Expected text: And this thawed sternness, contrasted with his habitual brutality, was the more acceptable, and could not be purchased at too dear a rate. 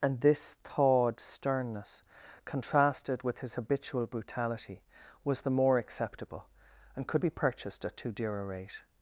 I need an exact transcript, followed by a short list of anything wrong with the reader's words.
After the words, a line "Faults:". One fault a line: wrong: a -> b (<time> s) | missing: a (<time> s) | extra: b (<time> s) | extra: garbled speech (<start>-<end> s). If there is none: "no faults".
And this thawed sternness, contrasted with his habitual brutality, was the more acceptable, and could be purchased at too dear a rate.
Faults:
missing: not (7.2 s)